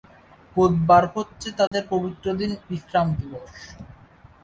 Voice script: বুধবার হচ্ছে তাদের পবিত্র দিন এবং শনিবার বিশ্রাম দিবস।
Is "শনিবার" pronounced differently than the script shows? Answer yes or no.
yes